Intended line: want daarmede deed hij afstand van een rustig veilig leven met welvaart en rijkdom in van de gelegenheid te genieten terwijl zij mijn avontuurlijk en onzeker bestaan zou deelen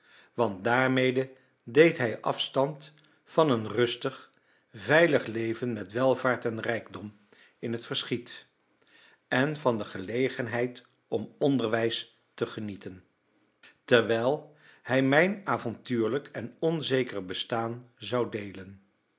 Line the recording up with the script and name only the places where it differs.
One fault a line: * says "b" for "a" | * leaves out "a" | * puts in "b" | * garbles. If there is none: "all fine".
* puts in "het verschiet en"
* puts in "om onderwijs"
* says "hij" for "zij"